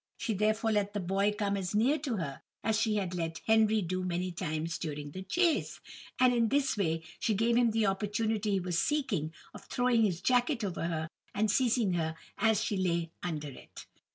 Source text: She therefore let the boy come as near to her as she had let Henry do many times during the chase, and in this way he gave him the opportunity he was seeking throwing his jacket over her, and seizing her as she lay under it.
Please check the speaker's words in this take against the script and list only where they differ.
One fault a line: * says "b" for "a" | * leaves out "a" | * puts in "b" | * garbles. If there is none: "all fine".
* says "she" for "he"
* puts in "of"